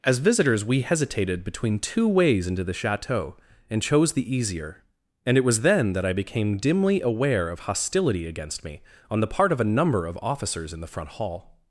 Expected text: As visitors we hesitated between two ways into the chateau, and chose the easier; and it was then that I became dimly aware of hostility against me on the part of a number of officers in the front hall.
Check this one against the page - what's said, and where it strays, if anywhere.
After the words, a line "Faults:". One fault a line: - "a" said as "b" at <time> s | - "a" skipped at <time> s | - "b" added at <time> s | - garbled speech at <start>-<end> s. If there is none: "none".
As visitors we hesitated between two ways into the chateau, and chose the easier; and it was then that I became dimly aware of hostility against me on the part of a number of officers in the front hall.
Faults:
none